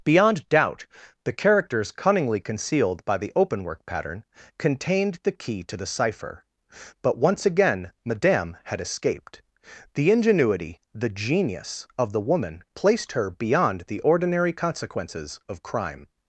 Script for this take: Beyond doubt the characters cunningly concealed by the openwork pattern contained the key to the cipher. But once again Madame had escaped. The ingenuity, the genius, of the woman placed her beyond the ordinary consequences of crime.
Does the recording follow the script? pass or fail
pass